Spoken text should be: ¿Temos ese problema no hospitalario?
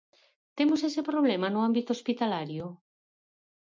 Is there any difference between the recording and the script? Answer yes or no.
yes